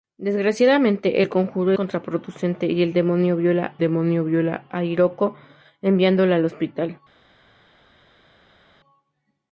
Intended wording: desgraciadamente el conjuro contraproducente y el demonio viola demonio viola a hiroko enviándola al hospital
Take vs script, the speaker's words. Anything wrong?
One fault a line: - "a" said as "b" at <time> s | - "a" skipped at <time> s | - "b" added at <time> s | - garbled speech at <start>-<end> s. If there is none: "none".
none